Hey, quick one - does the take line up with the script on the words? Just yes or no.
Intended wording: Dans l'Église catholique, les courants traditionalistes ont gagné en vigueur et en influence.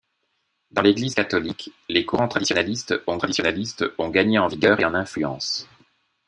no